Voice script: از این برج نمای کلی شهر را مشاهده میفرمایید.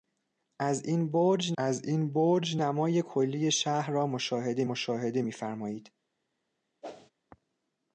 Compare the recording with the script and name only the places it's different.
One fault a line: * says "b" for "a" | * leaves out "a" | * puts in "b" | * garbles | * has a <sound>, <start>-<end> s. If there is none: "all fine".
* puts in "از این برج"
* puts in "مشاهده"
* has a whoosh, 6.8-7.1 s